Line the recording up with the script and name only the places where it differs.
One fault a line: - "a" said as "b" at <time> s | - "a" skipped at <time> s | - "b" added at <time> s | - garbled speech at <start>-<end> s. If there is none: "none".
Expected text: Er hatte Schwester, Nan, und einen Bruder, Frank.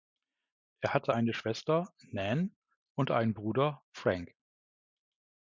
- "eine" added at 1.1 s